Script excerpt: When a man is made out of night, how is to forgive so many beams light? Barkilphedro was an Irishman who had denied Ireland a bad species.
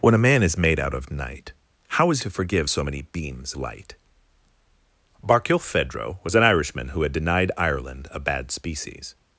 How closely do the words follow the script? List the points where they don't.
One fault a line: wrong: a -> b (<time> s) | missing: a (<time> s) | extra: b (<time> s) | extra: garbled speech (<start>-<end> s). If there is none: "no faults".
no faults